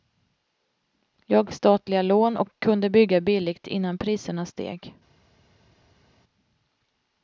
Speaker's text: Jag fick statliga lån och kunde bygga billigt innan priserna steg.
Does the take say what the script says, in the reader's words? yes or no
no